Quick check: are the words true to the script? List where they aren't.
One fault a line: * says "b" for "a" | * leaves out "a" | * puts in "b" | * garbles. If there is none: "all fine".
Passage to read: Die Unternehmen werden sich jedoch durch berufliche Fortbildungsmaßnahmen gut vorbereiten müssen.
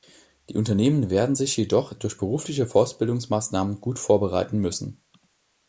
all fine